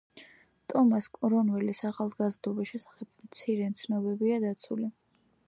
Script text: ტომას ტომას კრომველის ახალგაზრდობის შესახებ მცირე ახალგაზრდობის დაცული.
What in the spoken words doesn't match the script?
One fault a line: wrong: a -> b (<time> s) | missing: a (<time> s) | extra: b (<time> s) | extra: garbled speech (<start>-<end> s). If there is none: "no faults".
missing: ტომას (1.1 s)
wrong: ახალგაზრდობის -> ცნობებია (3.8 s)